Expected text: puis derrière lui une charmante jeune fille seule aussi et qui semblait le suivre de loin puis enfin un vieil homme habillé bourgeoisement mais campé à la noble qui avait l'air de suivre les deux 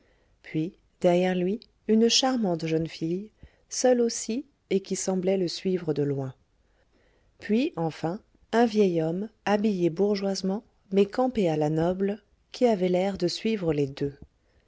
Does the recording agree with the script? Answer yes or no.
yes